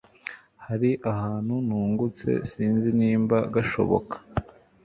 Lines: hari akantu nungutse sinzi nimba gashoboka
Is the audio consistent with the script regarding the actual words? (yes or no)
yes